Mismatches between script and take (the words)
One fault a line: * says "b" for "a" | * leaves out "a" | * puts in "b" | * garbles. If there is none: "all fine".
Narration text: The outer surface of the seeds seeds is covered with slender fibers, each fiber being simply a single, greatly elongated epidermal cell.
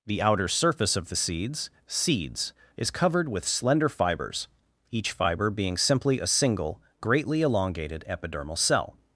all fine